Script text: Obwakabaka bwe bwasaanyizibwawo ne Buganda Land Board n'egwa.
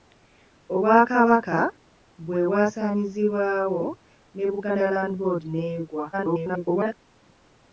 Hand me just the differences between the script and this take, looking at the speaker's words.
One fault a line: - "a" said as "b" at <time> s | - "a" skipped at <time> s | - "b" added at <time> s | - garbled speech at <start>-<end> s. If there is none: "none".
- garbled speech at 6.1-6.9 s